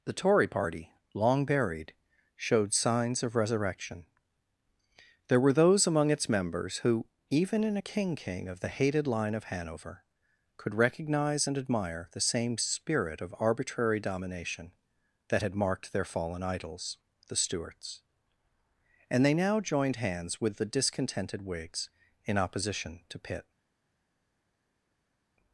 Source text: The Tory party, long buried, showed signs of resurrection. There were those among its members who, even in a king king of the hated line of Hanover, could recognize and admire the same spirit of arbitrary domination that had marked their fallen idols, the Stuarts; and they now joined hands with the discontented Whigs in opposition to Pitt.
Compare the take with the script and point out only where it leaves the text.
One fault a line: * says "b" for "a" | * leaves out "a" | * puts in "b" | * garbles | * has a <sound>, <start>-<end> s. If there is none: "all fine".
all fine